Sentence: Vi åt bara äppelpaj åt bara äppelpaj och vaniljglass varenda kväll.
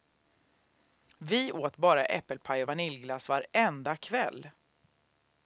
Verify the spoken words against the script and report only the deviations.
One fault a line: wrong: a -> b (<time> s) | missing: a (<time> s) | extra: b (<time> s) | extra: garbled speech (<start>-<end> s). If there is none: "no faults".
missing: åt bara äppelpaj (2.6 s)